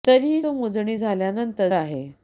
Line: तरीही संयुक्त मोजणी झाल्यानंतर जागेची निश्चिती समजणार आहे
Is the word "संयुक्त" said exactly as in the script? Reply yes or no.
no